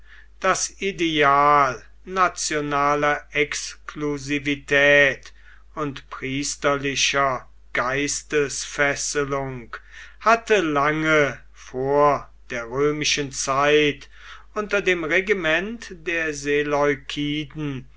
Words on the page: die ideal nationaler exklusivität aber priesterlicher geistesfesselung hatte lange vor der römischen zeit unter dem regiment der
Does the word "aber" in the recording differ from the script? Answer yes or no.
yes